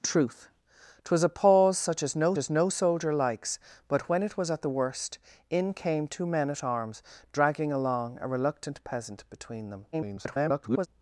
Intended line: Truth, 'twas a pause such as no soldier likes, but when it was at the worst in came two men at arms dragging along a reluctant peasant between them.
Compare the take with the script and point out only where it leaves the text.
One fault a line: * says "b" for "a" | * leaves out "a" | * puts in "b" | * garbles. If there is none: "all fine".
* puts in "as no"
* garbles